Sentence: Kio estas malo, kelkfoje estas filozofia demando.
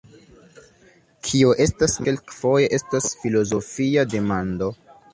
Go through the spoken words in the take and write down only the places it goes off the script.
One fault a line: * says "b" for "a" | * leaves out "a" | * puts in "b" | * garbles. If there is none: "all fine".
* leaves out "malo"